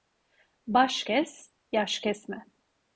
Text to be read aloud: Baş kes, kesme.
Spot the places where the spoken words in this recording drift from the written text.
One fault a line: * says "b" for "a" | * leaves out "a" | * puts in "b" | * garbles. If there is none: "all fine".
* puts in "yaş"